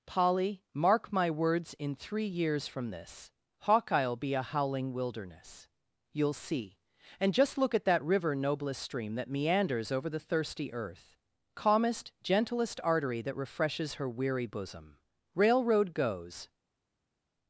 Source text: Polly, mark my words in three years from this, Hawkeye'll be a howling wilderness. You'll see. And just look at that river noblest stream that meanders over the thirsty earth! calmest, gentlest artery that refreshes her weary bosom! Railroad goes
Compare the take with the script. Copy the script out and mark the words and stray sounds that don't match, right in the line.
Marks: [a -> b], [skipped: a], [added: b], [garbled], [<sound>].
Polly, mark my words in three years from this, Hawkeye'll be a howling wilderness. You'll see. And just look at that river noblest stream that meanders over the thirsty earth! calmest, gentlest artery that refreshes her weary bosom! Railroad goes